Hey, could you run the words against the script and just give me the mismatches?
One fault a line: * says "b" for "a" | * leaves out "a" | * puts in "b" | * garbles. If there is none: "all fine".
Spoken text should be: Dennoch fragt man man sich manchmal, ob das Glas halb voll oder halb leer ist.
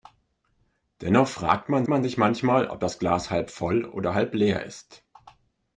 all fine